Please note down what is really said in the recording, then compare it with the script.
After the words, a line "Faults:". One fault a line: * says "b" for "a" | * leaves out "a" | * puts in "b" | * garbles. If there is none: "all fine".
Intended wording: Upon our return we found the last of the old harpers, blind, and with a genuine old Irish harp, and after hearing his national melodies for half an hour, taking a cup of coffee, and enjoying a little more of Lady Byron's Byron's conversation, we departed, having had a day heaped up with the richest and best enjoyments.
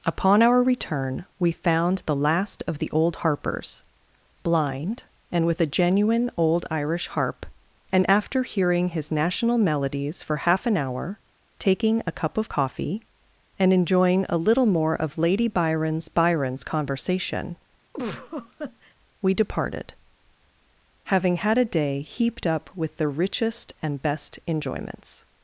Upon our return we found the last of the old harpers, blind, and with a genuine old Irish harp, and after hearing his national melodies for half an hour, taking a cup of coffee, and enjoying a little more of Lady Byron's Byron's conversation, we departed, having had a day heaped up with the richest and best enjoyments.
Faults:
all fine